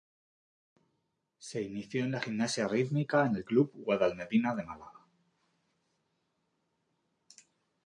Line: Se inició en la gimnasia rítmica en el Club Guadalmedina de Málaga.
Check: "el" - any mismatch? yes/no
no